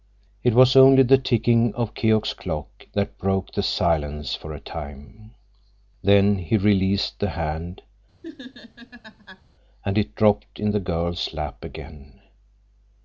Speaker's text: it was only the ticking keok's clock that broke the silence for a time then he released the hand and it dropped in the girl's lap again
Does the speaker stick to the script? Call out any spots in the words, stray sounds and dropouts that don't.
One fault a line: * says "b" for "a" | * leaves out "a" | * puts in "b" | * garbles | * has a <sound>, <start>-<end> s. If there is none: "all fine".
* puts in "of"
* has a laugh, 8.2-9.4 s